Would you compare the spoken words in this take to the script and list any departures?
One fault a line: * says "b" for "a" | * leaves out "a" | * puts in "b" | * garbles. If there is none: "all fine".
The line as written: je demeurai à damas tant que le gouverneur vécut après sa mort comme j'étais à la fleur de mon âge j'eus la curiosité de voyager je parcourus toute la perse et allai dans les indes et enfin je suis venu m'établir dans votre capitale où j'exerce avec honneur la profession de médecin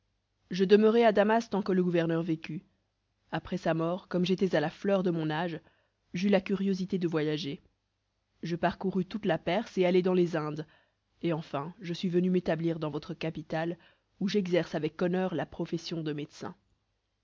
all fine